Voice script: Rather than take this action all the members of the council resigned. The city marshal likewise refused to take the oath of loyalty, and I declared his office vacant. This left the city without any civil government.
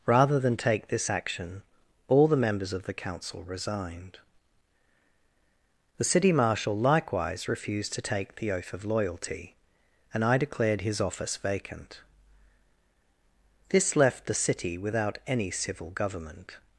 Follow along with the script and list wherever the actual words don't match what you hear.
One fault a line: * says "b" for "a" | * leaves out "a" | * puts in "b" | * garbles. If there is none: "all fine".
all fine